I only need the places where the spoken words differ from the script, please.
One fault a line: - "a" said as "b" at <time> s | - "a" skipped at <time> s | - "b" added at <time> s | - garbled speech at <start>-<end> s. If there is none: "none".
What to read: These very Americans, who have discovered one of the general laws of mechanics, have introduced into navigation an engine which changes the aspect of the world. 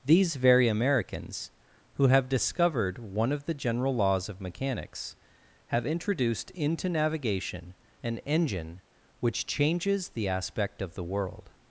none